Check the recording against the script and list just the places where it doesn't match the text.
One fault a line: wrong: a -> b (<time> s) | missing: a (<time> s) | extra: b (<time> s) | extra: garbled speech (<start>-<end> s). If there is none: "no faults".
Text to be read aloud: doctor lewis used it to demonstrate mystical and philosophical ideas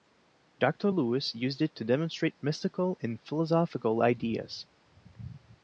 no faults